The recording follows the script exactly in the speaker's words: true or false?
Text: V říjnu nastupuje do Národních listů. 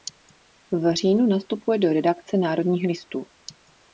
false